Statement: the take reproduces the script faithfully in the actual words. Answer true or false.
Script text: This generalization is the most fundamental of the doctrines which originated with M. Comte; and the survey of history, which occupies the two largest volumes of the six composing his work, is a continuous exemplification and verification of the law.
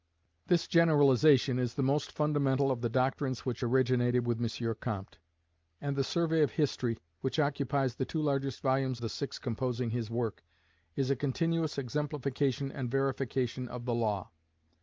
false